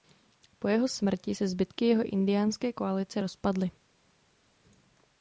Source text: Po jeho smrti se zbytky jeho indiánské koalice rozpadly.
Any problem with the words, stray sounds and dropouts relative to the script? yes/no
no